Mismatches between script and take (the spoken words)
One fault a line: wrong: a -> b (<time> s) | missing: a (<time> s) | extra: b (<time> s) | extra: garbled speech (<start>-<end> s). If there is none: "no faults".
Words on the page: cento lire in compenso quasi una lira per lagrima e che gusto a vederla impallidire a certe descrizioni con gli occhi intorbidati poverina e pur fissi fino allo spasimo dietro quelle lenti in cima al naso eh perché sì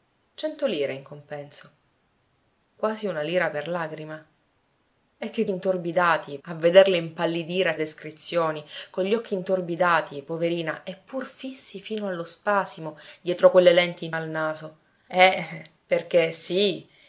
wrong: gusto -> intorbidati (5.5 s)
missing: certe (7.8 s)
missing: cima (14.1 s)